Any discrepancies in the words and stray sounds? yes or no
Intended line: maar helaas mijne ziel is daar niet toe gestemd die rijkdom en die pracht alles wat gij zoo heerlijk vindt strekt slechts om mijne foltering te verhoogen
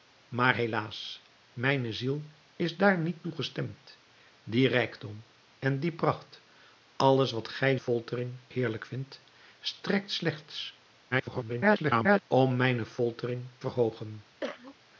yes